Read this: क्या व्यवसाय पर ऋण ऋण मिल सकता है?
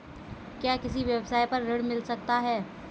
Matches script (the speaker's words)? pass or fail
fail